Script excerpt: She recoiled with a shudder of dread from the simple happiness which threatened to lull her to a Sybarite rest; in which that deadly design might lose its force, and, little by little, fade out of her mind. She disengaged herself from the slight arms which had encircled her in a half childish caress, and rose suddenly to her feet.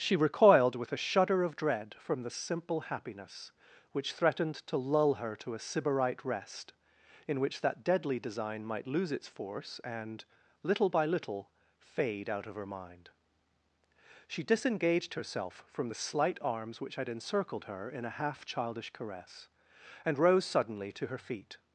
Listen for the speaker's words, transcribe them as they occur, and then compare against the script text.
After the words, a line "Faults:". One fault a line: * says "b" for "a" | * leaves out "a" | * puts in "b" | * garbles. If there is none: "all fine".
She recoiled with a shudder of dread from the simple happiness which threatened to lull her to a Sybarite rest; in which that deadly design might lose its force, and, little by little, fade out of her mind. She disengaged herself from the slight arms which had encircled her in a half childish caress, and rose suddenly to her feet.
Faults:
all fine